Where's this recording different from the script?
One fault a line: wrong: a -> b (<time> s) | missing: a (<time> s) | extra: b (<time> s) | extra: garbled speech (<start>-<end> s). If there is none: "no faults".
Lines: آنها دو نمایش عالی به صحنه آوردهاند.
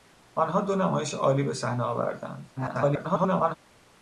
extra: garbled speech (2.6-3.6 s)